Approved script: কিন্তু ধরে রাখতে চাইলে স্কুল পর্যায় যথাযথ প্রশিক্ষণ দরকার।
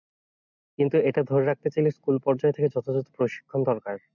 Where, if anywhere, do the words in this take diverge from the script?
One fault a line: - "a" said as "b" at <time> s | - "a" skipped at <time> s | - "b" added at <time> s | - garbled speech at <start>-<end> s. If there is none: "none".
- "এটা" added at 1.1 s
- "থেকে" added at 2.5 s